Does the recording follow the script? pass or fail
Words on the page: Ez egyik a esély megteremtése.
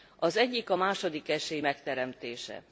fail